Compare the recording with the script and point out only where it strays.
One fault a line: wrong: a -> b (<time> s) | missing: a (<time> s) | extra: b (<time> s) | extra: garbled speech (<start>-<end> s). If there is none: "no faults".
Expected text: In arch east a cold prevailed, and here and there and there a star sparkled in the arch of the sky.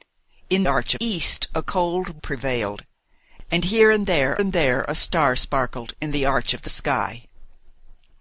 no faults